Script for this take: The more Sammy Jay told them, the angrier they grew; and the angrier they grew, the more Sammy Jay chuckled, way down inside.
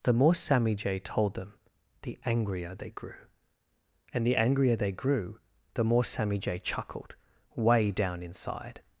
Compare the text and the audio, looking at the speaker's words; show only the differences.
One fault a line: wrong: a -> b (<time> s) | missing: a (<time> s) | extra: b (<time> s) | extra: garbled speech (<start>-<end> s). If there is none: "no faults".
no faults